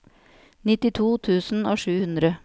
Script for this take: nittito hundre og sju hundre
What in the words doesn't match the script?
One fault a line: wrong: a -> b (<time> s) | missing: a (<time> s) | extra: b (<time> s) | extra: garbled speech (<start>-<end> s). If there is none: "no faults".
wrong: hundre -> tusen (1.3 s)